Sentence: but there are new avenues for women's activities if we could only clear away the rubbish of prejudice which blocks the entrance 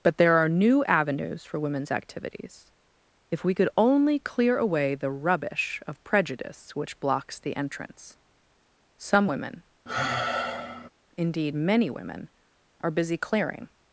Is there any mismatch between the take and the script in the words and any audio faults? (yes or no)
yes